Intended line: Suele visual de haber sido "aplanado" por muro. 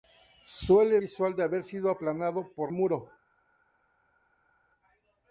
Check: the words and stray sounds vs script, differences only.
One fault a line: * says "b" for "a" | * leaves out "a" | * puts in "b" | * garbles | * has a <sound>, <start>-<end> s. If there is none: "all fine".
all fine